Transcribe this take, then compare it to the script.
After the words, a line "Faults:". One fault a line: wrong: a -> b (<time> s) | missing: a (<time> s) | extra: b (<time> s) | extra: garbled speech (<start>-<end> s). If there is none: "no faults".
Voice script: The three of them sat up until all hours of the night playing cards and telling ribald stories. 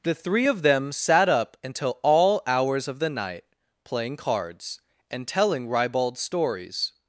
The three of them sat up until all hours of the night playing cards and telling ribald stories.
Faults:
no faults